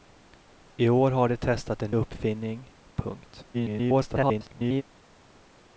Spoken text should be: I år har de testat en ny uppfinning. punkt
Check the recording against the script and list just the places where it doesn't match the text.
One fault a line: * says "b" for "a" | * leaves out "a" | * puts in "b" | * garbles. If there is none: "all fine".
* leaves out "ny"
* garbles